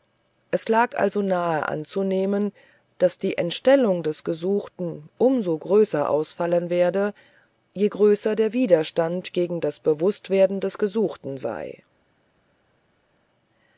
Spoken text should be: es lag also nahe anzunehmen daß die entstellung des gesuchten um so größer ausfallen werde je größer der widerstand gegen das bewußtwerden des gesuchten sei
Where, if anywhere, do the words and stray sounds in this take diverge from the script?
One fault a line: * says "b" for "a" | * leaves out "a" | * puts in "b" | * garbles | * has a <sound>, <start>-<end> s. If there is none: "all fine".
all fine